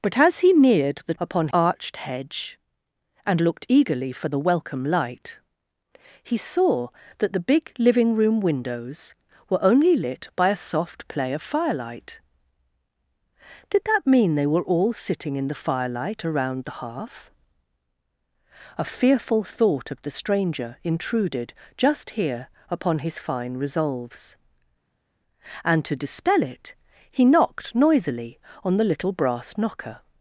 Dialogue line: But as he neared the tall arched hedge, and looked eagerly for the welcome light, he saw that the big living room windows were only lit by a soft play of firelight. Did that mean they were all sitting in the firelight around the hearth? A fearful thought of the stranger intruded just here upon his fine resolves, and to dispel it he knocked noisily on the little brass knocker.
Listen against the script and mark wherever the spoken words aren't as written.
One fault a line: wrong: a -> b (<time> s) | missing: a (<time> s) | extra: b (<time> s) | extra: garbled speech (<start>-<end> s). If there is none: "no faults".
wrong: tall -> upon (1.2 s)